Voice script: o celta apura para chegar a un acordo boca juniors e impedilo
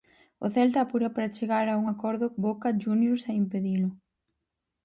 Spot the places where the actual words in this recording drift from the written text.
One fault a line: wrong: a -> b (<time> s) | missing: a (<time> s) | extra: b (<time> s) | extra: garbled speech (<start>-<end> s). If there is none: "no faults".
no faults